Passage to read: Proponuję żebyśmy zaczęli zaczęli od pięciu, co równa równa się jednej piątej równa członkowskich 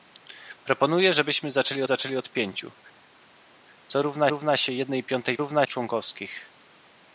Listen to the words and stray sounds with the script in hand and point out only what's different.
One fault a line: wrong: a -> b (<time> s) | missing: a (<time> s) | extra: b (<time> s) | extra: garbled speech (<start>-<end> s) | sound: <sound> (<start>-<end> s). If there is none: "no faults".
no faults